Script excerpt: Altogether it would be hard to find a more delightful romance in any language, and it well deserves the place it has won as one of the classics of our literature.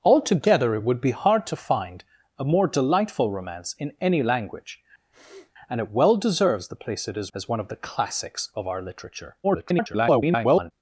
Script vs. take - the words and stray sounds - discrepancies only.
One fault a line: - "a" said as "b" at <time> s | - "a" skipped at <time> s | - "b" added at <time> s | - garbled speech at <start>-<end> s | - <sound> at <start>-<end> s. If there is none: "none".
- sniff at 5.1-5.5 s
- "won" skipped at 7.3 s
- garbled speech at 9.4-10.7 s